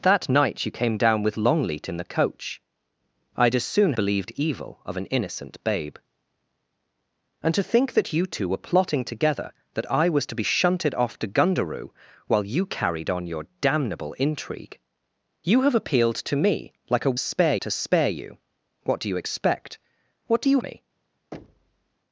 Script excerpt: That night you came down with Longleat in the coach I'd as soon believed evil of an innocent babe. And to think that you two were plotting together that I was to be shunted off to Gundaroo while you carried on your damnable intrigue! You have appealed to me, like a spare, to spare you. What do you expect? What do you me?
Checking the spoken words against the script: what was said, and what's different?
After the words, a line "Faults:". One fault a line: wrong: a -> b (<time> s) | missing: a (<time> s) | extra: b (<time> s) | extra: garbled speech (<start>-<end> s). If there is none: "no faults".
That night you came down with Longleat in the coach I'd as soon believed evil of an innocent babe. And to think that you two were plotting together that I was to be shunted off to Gundaroo while you carried on your damnable intrigue! You have appealed to me, like a spare, to spare you. What do you expect? What do you me?
Faults:
no faults